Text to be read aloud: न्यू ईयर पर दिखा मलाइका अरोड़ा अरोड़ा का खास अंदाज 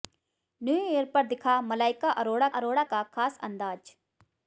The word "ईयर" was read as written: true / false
true